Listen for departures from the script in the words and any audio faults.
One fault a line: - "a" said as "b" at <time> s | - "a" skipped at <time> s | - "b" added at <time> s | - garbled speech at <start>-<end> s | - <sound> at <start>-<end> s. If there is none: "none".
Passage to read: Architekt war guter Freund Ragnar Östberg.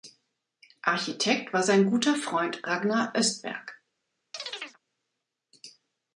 - "sein" added at 1.6 s
- chirp at 4.3-4.8 s